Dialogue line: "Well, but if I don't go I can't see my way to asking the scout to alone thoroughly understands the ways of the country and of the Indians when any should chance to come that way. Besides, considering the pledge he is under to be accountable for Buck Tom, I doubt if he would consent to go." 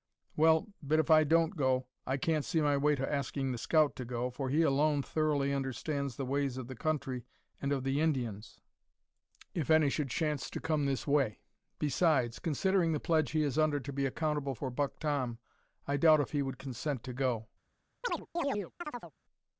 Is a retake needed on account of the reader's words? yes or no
yes